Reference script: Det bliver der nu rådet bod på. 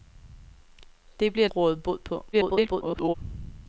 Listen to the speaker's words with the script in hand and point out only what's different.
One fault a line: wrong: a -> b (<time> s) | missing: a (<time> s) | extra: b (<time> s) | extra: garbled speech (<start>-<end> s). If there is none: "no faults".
missing: der nu (1.5 s)
extra: garbled speech (2.3-3.1 s)